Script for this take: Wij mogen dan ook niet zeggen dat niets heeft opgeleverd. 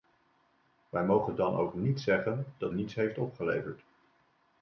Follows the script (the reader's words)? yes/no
yes